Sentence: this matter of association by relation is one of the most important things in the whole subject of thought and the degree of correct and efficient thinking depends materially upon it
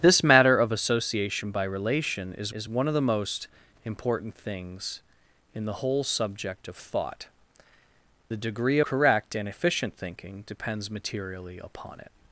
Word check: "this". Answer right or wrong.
right